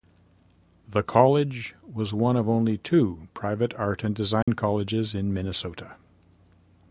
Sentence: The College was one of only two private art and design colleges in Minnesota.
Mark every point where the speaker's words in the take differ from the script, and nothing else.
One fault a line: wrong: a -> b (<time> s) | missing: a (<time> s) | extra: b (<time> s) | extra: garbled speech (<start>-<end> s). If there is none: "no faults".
no faults